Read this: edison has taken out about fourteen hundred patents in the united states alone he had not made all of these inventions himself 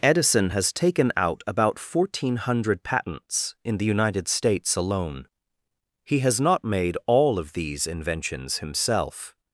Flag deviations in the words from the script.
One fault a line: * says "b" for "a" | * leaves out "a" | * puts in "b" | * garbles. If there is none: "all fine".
* says "has" for "had"